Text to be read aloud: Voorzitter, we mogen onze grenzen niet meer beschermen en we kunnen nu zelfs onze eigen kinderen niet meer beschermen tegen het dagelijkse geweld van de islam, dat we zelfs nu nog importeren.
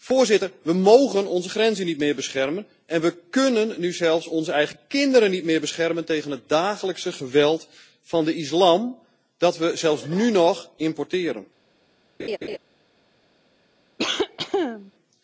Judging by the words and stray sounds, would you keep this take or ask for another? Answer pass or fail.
fail